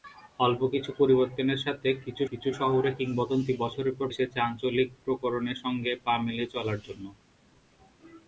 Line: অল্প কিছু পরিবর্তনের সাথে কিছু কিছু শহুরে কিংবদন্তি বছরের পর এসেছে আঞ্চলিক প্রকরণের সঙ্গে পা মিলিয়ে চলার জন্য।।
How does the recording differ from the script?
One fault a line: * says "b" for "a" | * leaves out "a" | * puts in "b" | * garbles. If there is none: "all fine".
all fine